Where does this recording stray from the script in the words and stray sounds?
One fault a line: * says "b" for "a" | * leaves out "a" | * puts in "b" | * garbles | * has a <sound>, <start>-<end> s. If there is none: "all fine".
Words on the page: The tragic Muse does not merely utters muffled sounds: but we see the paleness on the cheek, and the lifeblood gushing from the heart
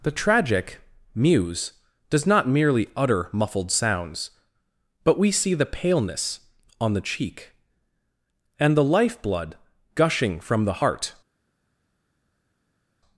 * says "utter" for "utters"